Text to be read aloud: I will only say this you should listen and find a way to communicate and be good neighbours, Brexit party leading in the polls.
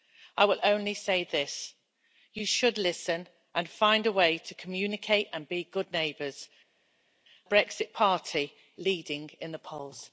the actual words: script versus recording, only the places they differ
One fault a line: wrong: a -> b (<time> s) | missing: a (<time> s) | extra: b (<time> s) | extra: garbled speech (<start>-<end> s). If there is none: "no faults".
no faults